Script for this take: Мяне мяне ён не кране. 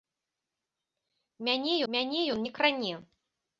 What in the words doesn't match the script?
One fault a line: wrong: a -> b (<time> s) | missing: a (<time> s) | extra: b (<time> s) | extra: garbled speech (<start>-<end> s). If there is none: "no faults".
no faults